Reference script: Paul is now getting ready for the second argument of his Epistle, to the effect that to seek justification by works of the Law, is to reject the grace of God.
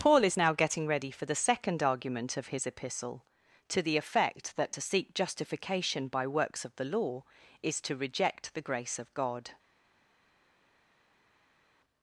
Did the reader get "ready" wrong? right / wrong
right